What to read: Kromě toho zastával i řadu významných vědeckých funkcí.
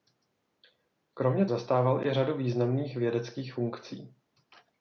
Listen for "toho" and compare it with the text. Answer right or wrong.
wrong